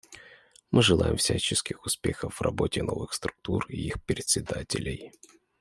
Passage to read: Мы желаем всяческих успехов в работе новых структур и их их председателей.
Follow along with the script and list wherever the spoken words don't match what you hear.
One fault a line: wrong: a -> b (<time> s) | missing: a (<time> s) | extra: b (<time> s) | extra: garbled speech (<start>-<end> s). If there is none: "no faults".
missing: их (4.0 s)